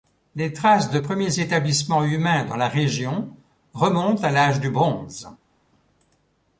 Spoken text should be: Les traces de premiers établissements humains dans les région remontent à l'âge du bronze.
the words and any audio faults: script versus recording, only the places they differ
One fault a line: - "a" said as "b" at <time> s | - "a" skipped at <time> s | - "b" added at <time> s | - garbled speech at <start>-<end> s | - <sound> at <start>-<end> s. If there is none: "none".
- "les" said as "la" at 2.5 s